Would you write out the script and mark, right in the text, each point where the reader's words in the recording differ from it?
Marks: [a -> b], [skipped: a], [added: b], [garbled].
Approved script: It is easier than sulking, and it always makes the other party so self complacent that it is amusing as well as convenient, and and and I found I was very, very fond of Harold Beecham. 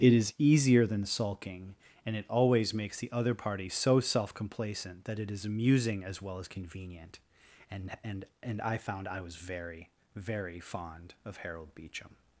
It is easier than sulking, and it always makes the other party so self complacent that it is amusing as well as convenient, and and and I found I was very, very fond of Harold Beecham.